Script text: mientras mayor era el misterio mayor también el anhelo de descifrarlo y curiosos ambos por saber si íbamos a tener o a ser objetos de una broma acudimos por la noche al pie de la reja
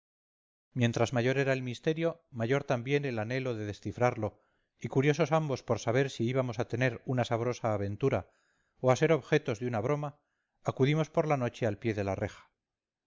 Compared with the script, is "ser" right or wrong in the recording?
right